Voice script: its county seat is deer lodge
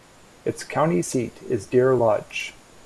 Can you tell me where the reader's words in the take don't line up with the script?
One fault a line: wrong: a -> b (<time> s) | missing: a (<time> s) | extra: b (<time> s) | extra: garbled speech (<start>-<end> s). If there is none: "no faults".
no faults